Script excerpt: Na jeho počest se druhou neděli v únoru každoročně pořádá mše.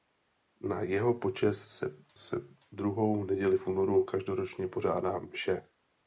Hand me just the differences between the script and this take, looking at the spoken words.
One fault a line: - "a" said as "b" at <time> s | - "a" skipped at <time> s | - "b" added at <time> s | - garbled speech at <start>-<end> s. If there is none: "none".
- "se" added at 2.2 s